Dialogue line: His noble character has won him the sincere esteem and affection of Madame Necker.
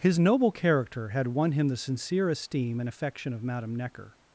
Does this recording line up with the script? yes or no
no